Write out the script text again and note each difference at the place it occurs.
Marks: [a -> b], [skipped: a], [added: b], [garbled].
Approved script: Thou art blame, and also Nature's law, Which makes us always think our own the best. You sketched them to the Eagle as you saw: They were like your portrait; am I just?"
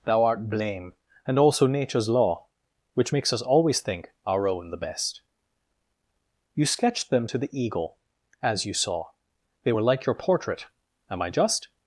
Thou art blame, and also Nature's law, Which makes us always think our own the best. You sketched them to the Eagle as you saw: They were like your portrait; am I just?"